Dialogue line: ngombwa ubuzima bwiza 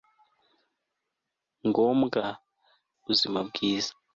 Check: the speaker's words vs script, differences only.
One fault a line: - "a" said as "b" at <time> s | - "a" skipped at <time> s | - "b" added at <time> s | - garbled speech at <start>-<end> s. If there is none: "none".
none